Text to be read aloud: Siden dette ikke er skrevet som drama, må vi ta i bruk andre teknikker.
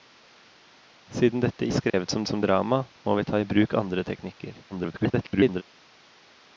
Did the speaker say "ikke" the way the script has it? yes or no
no